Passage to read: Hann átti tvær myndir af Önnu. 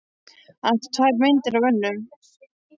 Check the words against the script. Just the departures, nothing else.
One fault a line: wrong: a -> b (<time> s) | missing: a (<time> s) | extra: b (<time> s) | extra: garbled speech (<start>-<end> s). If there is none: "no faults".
no faults